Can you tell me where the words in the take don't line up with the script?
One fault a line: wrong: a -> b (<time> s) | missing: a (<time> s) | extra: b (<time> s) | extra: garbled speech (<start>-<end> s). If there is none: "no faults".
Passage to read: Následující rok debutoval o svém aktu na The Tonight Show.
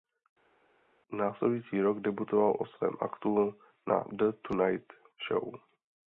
no faults